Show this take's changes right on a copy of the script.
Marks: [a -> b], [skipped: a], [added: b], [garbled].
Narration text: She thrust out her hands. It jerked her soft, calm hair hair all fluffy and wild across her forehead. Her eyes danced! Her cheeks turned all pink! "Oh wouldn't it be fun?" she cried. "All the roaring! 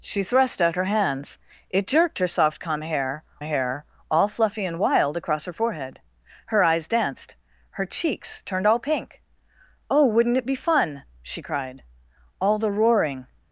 She thrust out her hands. It jerked her soft, calm hair hair all fluffy and wild across her forehead. Her eyes danced! Her cheeks turned all pink! "Oh wouldn't it be fun?" she cried. "All the roaring!